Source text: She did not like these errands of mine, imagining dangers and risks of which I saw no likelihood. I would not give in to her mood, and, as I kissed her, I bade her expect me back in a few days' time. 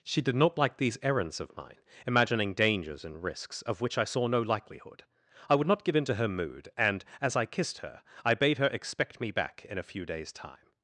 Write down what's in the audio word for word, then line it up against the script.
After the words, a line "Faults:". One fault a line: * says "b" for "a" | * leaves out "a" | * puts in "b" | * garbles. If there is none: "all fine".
She did not like these errands of mine, imagining dangers and risks of which I saw no likelihood. I would not give in to her mood, and, as I kissed her, I bade her expect me back in a few days' time.
Faults:
all fine